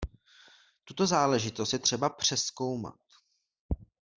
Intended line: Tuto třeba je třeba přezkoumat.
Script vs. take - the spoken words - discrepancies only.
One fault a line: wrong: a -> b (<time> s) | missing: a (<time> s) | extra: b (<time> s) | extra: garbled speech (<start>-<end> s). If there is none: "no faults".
wrong: třeba -> záležitost (1.1 s)